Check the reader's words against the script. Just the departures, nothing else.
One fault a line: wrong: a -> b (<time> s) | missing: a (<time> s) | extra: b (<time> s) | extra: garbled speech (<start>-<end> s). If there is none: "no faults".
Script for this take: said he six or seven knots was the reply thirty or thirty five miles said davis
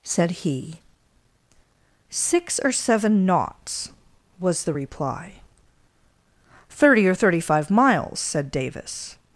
no faults